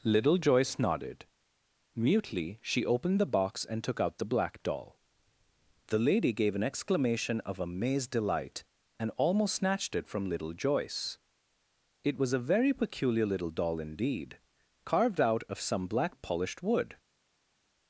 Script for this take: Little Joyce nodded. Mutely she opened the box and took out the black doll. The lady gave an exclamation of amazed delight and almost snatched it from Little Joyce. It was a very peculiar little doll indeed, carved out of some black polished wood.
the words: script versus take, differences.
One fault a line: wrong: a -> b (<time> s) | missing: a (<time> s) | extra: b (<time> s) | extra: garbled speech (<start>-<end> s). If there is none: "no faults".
no faults